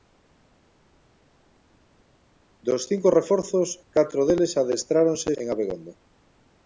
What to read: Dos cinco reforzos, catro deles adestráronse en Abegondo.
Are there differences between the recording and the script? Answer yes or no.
no